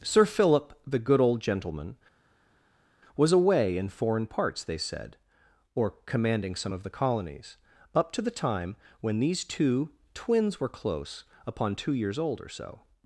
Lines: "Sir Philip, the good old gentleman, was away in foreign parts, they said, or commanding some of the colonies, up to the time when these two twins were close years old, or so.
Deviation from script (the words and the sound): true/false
true